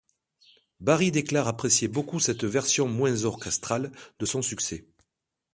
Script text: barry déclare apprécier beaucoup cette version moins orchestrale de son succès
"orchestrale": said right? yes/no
yes